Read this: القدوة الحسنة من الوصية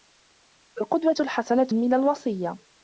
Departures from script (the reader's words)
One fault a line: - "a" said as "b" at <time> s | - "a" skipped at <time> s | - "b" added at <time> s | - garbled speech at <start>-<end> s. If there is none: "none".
none